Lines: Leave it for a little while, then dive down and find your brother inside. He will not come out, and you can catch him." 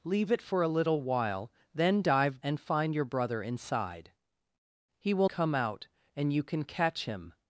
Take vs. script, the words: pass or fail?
fail